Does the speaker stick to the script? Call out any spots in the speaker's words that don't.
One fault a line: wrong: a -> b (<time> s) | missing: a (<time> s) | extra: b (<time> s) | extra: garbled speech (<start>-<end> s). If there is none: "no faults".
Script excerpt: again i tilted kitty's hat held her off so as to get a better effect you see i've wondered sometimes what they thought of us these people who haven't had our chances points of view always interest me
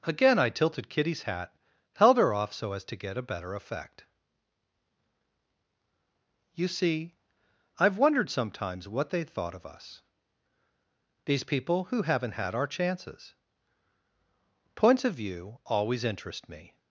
no faults